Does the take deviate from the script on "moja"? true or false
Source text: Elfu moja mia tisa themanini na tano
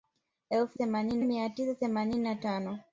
true